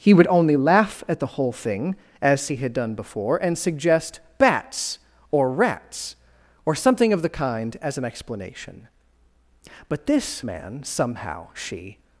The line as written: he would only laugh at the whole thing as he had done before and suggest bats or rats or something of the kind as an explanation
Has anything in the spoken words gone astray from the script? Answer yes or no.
yes